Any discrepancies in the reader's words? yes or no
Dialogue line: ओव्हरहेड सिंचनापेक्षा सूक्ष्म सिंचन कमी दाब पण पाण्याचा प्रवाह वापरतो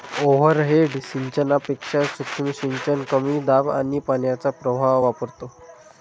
yes